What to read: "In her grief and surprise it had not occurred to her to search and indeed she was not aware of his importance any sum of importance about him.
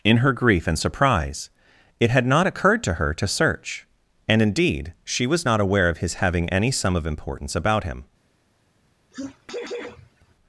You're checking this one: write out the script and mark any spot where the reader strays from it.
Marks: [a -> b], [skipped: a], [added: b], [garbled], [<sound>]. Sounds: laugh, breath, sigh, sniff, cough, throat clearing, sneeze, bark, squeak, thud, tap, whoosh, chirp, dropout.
"In her grief and surprise it had not occurred to her to search and indeed she was not aware of his [importance -> having] any sum of importance about him. [sneeze]